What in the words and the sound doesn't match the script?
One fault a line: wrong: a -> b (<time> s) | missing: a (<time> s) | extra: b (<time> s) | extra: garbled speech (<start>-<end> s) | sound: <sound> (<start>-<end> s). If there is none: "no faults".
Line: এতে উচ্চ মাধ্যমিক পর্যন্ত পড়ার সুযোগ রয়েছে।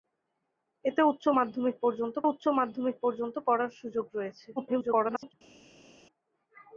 extra: উচ্চ মাধ্যমিক পর্যন্ত (2.2 s)
extra: garbled speech (4.6-5.3 s)